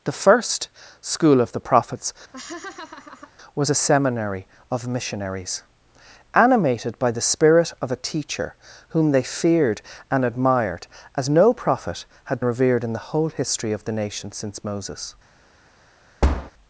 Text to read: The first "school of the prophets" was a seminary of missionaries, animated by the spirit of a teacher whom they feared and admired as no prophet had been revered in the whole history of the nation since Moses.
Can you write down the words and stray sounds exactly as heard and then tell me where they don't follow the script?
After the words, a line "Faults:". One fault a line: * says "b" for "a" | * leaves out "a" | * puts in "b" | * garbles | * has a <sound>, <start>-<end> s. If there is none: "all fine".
The first "school of the prophets" was a seminary of missionaries, animated by the spirit of a teacher whom they feared and admired as no prophet had revered in the whole history of the nation since Moses.
Faults:
* has a laugh, 2.3-3.3 s
* leaves out "been"
* has a thud, 16.2-16.5 s